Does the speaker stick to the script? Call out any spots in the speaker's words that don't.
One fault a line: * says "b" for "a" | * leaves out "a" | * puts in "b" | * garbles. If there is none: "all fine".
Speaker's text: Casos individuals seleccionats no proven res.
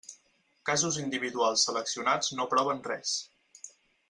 all fine